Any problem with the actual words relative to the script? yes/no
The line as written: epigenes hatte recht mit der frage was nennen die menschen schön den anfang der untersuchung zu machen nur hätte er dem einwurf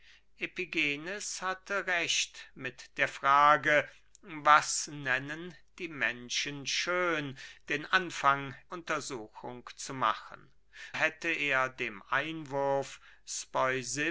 yes